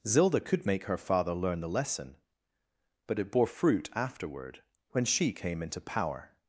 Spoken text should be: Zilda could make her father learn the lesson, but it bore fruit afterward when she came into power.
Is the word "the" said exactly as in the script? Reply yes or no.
yes